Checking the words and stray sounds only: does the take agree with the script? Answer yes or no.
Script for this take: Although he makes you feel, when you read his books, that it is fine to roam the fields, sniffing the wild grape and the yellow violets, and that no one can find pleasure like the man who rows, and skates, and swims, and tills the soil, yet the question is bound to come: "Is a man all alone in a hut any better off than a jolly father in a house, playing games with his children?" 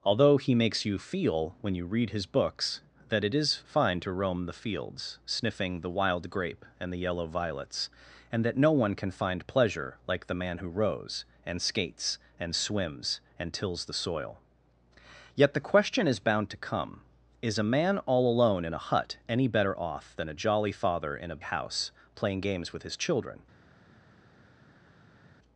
yes